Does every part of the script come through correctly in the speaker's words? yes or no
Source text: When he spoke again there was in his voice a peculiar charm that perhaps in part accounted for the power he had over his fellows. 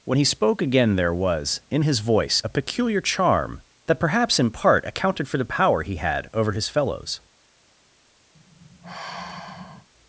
yes